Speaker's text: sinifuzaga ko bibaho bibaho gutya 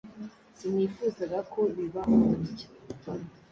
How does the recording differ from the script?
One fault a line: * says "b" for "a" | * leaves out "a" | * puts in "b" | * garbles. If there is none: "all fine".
* leaves out "bibaho"